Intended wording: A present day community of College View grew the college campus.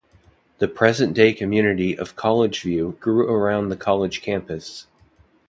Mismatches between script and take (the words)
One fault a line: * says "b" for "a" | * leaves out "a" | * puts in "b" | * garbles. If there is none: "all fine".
* says "The" for "A"
* puts in "around"